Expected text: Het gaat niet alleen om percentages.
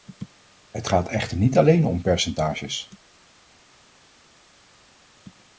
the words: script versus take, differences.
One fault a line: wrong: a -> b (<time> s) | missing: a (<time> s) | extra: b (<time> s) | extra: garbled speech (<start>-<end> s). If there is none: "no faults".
extra: echter (1.1 s)